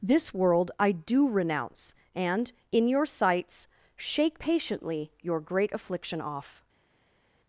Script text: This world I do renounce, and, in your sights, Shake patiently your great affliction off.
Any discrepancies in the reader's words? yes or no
no